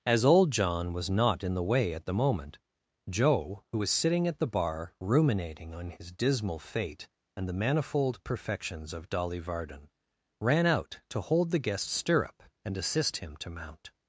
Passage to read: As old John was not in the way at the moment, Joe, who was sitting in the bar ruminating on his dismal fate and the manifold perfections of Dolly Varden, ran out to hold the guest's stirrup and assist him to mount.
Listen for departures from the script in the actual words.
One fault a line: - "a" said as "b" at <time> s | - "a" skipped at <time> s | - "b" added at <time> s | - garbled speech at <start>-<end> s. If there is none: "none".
- "in" said as "at" at 4.3 s